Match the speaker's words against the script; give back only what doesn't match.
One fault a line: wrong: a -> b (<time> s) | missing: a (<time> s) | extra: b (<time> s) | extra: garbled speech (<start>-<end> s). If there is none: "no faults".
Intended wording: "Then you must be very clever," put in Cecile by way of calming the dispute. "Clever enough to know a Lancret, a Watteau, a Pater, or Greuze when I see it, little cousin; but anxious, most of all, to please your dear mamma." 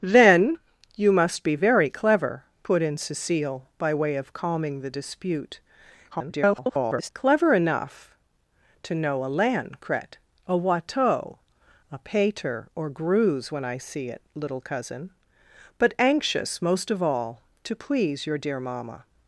extra: garbled speech (6.1-7.1 s)